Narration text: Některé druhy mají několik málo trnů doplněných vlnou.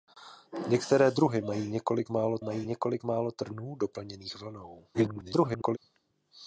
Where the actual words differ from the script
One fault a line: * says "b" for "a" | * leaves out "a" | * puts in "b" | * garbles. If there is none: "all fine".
* puts in "mají několik málo"
* garbles